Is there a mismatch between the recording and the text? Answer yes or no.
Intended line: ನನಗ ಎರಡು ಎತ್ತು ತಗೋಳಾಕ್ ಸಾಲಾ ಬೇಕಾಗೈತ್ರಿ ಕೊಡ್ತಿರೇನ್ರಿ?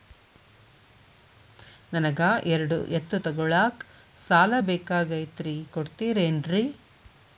no